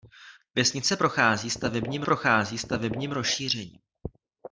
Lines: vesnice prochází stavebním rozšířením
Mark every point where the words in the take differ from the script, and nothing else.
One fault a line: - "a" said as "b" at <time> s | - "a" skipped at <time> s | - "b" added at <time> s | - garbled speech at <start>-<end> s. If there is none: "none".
- "prochází stavebním" added at 2.0 s